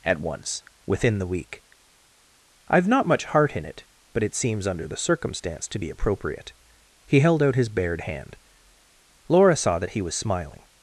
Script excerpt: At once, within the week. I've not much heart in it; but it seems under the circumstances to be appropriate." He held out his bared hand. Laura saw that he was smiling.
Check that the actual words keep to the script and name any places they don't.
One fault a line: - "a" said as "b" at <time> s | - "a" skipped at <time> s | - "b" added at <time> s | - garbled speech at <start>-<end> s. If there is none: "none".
- "circumstances" said as "circumstance" at 5.0 s